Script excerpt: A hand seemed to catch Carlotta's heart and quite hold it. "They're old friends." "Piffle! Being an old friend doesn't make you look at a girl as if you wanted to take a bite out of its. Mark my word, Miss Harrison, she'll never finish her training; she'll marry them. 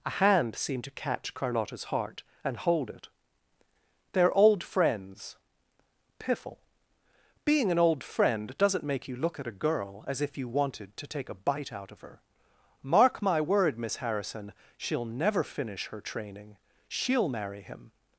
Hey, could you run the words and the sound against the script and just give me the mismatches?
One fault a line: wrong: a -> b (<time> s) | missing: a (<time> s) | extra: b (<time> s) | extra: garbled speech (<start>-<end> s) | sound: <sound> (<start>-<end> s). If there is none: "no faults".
missing: quite (2.6 s)
wrong: its -> her (12.0 s)
wrong: them -> him (17.6 s)